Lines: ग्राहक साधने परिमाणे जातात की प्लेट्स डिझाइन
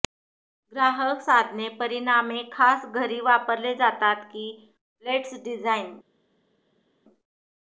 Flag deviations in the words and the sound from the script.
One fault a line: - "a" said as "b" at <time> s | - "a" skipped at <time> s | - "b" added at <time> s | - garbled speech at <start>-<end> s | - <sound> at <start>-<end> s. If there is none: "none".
- "खास घरी वापरले" added at 2.5 s